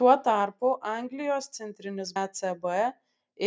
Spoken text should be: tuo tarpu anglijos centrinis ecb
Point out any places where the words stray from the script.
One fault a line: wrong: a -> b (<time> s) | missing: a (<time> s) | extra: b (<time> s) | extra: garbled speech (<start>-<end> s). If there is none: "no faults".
no faults